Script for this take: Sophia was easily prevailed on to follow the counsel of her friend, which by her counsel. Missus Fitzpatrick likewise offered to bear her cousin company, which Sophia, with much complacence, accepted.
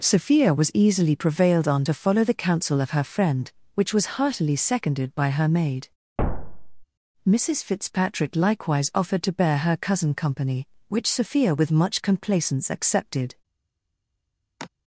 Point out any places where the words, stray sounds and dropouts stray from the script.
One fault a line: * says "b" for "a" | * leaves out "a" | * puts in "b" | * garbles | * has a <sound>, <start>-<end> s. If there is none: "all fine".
* puts in "was heartily seconded"
* says "maid" for "counsel"
* has a thud, 6.2-6.8 s
* has a sigh, 14.6-14.7 s